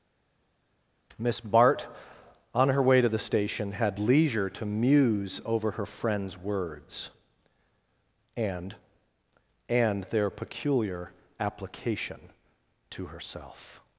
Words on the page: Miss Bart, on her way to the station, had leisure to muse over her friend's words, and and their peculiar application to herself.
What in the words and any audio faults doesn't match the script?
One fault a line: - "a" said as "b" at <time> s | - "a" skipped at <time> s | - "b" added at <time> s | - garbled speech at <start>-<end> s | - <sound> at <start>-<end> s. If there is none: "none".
none